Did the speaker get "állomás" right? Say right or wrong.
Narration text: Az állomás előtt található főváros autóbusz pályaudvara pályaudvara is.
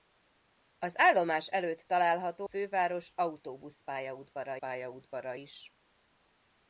right